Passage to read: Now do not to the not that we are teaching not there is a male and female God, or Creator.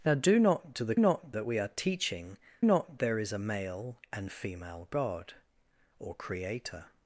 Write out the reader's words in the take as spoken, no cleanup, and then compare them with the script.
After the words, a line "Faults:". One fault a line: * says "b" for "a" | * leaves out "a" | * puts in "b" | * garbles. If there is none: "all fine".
Now do not to the not that we are teaching not there is a male and female God, or Creator.
Faults:
all fine